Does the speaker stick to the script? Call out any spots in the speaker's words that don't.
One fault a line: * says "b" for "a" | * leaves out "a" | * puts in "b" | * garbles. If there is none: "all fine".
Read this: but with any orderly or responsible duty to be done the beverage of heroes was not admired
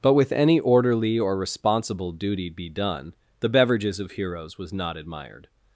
* leaves out "to"
* says "beverages" for "beverage"